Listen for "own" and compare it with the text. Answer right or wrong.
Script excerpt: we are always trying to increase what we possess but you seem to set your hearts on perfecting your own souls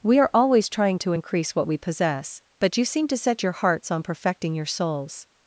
wrong